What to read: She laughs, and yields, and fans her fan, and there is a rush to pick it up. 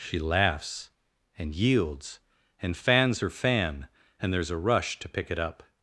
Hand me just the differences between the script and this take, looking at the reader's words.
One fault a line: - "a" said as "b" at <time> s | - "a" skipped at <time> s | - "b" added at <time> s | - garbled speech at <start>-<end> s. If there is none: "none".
none